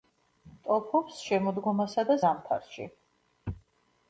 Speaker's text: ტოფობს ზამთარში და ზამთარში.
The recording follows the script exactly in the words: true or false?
false